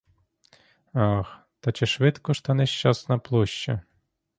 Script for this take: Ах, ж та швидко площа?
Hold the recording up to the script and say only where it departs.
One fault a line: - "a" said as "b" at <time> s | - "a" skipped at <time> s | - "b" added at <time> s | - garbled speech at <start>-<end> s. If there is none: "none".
- "та чи швидко" added at 1.6 s
- "швидко" said as "нещасна" at 2.5 s